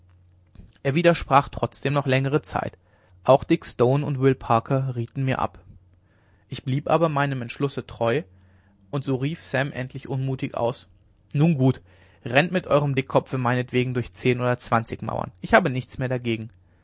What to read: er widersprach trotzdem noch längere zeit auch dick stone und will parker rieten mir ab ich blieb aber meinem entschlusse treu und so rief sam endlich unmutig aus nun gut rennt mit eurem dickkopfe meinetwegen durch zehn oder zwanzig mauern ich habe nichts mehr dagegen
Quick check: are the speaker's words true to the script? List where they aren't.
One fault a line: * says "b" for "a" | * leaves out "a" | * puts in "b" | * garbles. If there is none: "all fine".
all fine